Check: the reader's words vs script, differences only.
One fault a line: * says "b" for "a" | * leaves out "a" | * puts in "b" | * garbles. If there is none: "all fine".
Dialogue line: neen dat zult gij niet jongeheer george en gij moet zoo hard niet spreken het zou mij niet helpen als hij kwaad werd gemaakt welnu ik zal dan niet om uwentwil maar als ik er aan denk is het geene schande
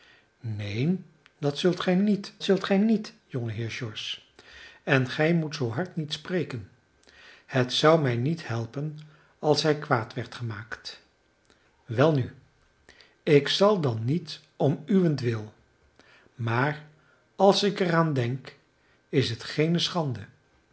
* puts in "zult gij niet"